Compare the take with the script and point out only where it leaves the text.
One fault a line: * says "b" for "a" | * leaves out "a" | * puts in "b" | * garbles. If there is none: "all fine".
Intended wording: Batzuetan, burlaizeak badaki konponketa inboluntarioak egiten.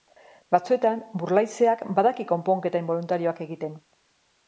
all fine